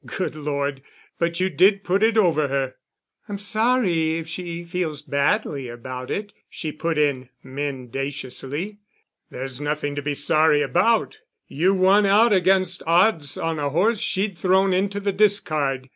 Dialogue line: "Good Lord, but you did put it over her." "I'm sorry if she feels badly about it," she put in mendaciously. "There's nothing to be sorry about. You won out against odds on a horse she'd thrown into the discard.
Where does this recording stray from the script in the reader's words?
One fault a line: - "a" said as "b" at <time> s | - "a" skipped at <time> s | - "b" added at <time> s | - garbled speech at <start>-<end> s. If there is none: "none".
none